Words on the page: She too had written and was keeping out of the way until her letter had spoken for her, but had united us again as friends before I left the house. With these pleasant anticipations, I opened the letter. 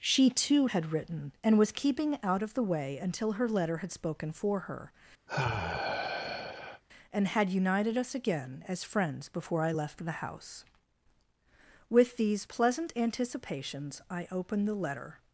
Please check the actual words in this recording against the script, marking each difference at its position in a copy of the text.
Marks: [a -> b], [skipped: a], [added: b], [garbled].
She too had written and was keeping out of the way until her letter had spoken for her, [but -> and] had united us again as friends before I left the house. With these pleasant anticipations, I opened the letter.